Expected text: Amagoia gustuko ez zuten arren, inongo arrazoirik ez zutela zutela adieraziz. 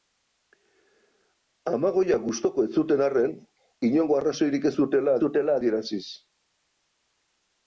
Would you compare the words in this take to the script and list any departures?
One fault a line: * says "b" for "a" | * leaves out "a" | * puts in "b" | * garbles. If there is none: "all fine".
all fine